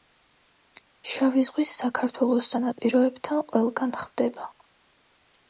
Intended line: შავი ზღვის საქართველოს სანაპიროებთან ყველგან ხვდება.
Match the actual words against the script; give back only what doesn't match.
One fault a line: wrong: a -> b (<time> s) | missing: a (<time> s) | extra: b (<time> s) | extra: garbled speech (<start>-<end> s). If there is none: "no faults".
no faults